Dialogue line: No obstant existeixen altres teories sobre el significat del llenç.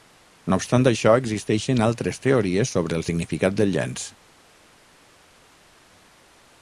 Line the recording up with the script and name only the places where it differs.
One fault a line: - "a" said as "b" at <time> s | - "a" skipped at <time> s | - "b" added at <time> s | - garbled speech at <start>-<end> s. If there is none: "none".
- "això" added at 0.9 s